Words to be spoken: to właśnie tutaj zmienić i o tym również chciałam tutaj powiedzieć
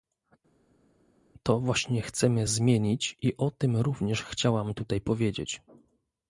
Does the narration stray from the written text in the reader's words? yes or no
yes